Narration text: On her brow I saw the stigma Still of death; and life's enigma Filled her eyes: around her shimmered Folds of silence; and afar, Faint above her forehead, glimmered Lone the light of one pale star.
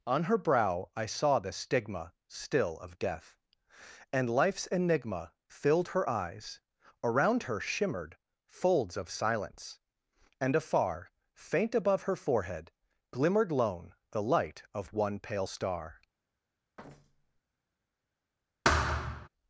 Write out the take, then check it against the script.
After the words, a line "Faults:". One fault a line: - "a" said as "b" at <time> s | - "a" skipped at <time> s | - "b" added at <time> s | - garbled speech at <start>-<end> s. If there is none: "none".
On her brow I saw the stigma Still of death; and life's enigma Filled her eyes: around her shimmered Folds of silence; and afar, Faint above her forehead, glimmered Lone the light of one pale star.
Faults:
none